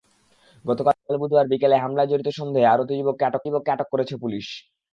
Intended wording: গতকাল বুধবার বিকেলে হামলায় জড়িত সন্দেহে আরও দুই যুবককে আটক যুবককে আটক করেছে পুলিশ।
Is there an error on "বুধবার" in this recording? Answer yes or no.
no